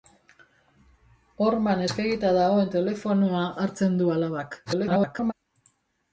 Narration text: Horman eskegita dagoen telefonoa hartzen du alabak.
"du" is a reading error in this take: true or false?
false